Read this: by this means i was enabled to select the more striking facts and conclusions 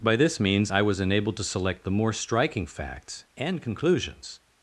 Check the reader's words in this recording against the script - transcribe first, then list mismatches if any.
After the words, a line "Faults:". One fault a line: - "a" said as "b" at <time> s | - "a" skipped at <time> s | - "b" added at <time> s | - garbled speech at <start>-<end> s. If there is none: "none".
by this means i was enabled to select the more striking facts and conclusions
Faults:
none